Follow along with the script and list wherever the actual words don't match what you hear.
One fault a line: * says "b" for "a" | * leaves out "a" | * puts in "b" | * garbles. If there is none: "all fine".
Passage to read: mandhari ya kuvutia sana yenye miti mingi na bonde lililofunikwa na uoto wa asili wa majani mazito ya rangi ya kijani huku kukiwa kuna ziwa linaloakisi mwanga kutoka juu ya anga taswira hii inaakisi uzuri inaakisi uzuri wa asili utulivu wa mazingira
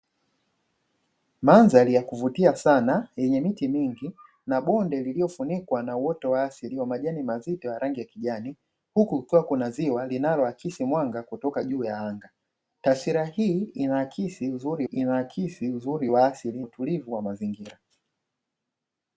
all fine